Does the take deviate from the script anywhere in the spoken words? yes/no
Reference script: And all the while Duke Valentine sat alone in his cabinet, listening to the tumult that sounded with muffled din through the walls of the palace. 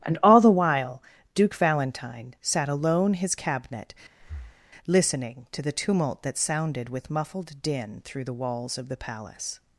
yes